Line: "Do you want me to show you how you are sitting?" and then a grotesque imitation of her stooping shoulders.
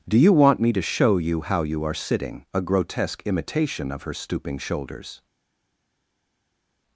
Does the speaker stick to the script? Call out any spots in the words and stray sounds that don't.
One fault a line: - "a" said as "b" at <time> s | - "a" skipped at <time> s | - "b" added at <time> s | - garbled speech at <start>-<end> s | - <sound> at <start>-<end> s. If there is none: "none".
- "and then" skipped at 2.5 s